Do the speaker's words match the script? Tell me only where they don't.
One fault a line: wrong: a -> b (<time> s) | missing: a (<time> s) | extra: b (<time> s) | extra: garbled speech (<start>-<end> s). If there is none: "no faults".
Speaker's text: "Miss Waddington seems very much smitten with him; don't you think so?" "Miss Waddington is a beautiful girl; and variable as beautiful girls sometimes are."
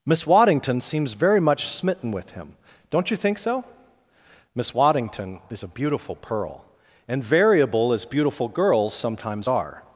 wrong: girl -> pearl (6.2 s)